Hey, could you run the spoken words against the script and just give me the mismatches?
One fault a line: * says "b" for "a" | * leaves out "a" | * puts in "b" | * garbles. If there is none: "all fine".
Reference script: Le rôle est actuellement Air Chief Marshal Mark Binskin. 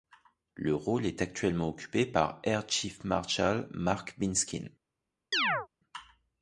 * puts in "occupé par"